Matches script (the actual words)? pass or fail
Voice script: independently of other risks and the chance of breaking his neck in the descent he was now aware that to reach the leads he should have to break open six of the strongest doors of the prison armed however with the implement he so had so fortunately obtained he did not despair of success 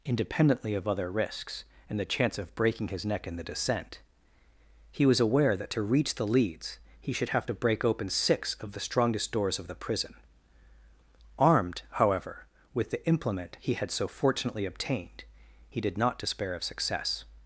fail